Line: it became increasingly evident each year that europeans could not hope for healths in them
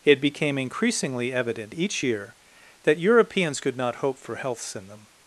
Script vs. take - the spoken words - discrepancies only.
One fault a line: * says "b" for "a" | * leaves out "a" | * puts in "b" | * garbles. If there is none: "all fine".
all fine